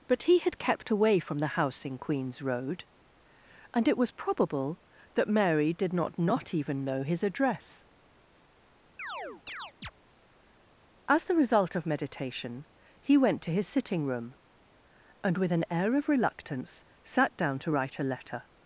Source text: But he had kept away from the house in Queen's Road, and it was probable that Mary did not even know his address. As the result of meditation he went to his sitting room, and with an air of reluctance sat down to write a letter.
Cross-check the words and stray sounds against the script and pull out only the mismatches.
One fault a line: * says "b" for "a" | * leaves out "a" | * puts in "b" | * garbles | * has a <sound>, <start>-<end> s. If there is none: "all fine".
* puts in "not"
* has a chirp, 9.0-9.9 s